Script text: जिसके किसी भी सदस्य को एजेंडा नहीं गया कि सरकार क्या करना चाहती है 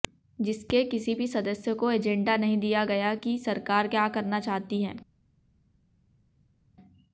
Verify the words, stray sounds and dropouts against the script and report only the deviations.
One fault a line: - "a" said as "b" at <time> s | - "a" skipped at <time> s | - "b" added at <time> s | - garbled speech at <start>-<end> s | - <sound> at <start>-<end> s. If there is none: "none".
- "दिया" added at 2.6 s